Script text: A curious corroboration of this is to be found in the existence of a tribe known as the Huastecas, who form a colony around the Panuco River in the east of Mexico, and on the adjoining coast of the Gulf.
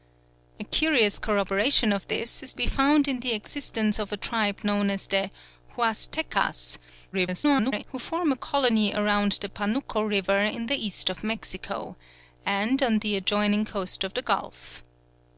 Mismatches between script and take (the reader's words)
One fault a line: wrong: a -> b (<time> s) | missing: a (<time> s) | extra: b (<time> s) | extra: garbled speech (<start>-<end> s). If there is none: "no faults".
missing: to (2.5 s)
extra: garbled speech (7.1-7.8 s)